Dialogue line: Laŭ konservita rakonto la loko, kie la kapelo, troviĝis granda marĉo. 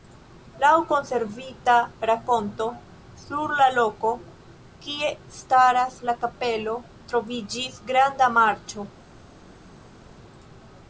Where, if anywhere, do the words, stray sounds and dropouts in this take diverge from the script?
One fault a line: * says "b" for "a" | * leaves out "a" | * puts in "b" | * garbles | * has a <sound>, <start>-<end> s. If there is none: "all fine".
* puts in "sur"
* puts in "staras"